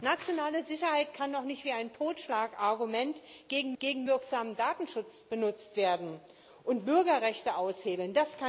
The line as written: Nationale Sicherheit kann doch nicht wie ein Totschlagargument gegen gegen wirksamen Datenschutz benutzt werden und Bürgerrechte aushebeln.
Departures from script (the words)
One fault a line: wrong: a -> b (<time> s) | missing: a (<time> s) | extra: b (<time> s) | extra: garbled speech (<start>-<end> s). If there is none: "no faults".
no faults